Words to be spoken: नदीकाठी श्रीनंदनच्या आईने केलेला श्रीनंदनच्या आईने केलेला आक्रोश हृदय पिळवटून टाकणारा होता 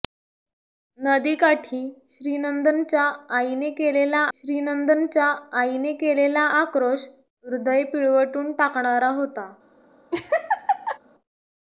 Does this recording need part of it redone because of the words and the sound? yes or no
yes